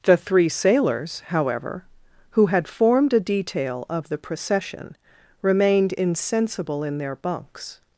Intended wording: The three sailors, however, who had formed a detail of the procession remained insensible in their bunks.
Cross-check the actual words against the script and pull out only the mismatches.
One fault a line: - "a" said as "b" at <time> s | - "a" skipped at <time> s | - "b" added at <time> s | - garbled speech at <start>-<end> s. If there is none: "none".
none